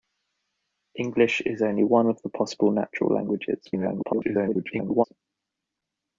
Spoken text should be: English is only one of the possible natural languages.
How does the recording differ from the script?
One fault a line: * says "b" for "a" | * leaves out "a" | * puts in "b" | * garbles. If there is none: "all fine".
* garbles